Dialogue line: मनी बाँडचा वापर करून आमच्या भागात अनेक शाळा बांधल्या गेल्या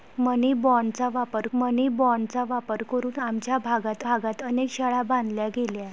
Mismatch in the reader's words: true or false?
true